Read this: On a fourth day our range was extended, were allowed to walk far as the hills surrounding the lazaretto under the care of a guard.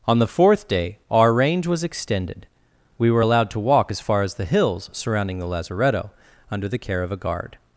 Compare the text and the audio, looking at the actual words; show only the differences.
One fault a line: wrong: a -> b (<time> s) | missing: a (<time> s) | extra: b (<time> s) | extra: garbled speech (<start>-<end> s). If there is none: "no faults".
wrong: a -> the (0.2 s)
extra: we (3.0 s)
extra: as (3.9 s)